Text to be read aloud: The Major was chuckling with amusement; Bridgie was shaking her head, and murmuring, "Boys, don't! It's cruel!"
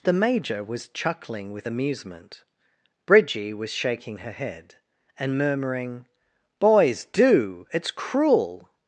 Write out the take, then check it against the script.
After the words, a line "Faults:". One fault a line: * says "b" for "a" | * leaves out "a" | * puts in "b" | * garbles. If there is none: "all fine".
The Major was chuckling with amusement; Bridgie was shaking her head, and murmuring, "Boys, do! It's cruel!"
Faults:
* says "do" for "don't"